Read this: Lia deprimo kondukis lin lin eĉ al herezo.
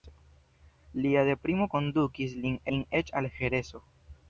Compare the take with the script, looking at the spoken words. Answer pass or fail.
pass